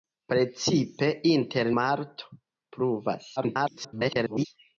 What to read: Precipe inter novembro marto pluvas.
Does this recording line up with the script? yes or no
no